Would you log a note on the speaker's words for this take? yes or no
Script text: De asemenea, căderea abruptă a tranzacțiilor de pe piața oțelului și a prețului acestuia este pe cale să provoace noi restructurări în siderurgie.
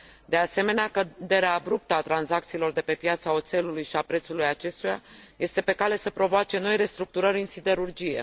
no